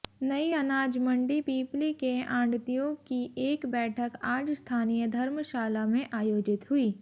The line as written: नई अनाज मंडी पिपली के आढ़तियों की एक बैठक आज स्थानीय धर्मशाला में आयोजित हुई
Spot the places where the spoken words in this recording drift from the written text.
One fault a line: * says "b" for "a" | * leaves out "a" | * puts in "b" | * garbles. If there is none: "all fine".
all fine